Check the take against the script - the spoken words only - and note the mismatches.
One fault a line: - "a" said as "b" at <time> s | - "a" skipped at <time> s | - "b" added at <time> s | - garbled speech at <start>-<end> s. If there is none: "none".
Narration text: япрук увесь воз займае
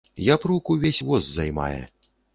none